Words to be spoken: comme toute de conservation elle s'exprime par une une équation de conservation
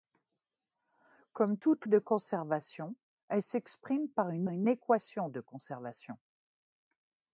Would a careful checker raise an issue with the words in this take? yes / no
no